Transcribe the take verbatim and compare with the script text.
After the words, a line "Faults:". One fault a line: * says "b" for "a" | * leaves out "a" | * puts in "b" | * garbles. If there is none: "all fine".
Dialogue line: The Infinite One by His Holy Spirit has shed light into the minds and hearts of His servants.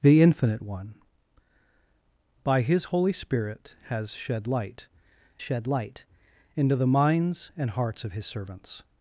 The Infinite One by His Holy Spirit has shed light shed light into the minds and hearts of His servants.
Faults:
* puts in "shed light"